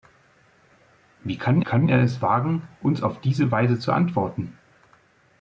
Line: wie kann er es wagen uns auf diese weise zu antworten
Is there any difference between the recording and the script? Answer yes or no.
yes